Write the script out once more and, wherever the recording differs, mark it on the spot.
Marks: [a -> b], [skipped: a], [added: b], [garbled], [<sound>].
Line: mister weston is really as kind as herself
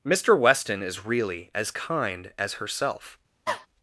mister weston is really as kind as herself [cough]